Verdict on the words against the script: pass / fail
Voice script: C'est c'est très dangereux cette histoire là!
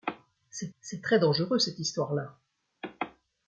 pass